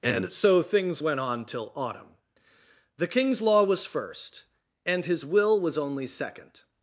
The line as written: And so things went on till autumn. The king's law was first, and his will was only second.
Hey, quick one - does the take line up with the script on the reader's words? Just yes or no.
yes